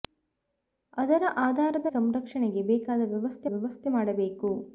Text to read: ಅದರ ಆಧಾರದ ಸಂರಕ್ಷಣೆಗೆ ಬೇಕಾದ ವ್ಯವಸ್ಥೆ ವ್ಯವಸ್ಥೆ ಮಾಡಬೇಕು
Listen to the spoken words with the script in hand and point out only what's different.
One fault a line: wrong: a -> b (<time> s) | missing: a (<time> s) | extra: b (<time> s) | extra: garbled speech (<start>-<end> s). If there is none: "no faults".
no faults